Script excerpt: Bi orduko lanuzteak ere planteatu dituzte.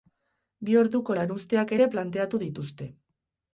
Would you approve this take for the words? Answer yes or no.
yes